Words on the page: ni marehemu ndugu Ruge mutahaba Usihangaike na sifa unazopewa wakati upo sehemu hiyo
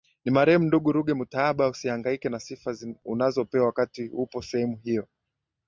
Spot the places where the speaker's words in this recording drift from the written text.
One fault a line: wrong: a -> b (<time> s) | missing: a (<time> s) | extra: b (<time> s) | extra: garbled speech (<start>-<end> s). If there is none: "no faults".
no faults